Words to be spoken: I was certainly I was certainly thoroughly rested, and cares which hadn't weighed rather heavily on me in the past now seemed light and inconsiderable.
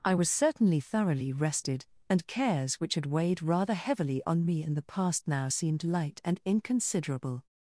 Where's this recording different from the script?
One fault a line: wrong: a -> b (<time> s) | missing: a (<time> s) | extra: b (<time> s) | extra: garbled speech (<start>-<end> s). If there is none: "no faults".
missing: I was certainly (0.8 s)
wrong: hadn't -> had (2.9 s)